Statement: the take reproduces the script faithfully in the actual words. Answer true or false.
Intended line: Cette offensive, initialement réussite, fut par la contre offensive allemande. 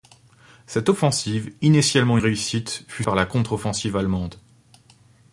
true